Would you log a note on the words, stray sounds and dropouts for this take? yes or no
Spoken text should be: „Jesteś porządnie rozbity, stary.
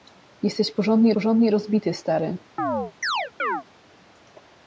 yes